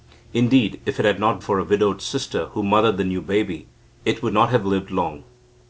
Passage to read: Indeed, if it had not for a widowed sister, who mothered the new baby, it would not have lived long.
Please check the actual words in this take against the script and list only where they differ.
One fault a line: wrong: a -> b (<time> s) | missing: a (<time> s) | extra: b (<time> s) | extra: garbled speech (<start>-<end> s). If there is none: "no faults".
no faults